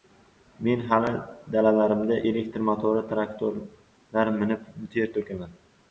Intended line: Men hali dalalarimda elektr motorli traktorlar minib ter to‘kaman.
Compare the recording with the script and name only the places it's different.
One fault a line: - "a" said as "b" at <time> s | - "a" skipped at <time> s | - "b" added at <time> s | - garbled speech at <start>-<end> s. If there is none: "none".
none